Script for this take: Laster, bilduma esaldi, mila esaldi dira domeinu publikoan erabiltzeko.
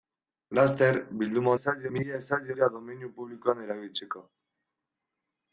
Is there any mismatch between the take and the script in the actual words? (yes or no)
no